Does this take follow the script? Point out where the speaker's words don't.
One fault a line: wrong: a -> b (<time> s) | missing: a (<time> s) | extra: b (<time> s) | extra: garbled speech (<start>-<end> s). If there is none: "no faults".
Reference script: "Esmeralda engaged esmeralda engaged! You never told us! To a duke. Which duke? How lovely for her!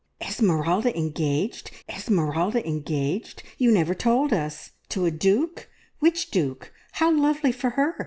no faults